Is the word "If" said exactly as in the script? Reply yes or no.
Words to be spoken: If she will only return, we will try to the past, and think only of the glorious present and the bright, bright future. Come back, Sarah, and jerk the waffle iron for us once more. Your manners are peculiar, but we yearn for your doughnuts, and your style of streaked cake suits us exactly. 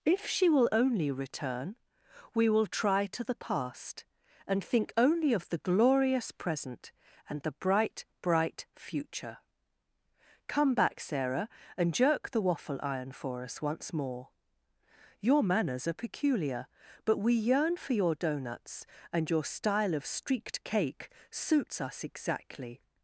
yes